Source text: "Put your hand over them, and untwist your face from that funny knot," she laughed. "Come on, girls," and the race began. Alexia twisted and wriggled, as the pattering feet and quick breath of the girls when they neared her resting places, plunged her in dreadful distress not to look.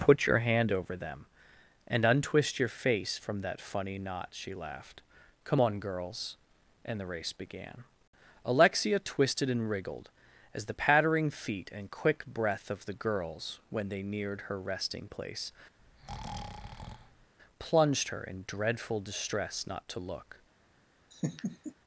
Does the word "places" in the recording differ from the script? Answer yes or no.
yes